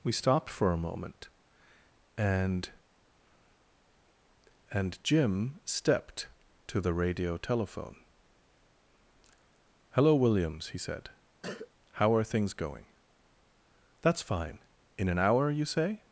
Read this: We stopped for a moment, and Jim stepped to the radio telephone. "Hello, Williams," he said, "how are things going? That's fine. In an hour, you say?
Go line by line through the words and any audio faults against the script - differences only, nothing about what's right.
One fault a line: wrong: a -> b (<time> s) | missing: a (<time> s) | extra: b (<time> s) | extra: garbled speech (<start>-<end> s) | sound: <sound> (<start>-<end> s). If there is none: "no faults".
extra: and (4.7 s)
sound: cough (11.4-11.7 s)